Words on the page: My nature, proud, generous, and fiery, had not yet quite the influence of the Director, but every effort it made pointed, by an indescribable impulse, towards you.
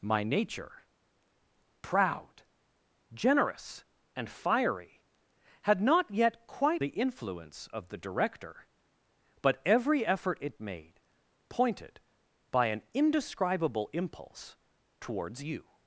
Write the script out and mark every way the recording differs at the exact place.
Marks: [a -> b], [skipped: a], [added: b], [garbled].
My nature, proud, generous, and fiery, had not yet quite the influence of the Director, but every effort it made pointed, by an indescribable impulse, towards you.